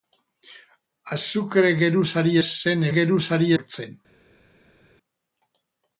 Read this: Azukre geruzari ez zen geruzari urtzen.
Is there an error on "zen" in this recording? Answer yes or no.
no